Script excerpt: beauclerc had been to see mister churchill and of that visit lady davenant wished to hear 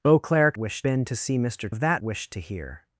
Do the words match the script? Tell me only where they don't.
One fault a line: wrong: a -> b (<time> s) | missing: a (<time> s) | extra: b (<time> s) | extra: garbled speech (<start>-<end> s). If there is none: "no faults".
wrong: had -> wished (0.5 s)
missing: churchill and (1.7 s)
missing: visit lady davenant (2.0 s)